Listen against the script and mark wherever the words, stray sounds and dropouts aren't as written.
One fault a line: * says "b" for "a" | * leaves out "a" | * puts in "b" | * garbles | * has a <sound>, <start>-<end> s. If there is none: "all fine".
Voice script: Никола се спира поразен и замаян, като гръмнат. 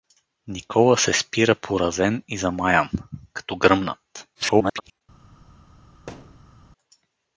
* garbles
* has a thud, 6.1-6.6 s